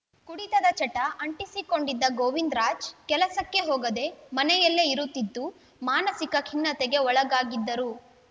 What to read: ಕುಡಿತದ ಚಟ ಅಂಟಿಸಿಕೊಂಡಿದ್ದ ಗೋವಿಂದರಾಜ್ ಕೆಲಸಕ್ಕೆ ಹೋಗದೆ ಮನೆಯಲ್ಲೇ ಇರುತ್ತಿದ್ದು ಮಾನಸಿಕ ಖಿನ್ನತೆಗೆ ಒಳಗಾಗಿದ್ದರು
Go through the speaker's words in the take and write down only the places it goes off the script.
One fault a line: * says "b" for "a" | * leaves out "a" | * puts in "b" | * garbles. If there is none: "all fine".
all fine